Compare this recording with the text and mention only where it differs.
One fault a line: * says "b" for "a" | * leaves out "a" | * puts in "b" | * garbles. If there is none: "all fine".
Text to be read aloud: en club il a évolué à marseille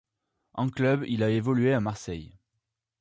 all fine